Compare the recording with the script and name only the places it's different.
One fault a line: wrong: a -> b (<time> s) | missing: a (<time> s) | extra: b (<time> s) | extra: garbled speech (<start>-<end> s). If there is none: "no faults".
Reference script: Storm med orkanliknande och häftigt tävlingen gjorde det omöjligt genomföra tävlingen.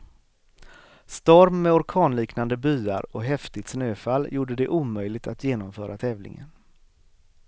extra: byar (2.6 s)
wrong: tävlingen -> snöfall (3.7 s)
extra: att (5.3 s)